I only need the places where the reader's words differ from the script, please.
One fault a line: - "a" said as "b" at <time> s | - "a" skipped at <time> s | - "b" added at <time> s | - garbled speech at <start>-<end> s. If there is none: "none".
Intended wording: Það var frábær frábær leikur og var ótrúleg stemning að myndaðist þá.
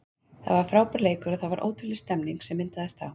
- "frábær" skipped at 1.0 s
- "það" added at 1.4 s
- "að" said as "sem" at 2.5 s